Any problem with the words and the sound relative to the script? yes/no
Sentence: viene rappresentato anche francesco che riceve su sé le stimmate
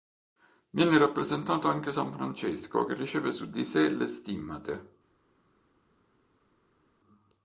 yes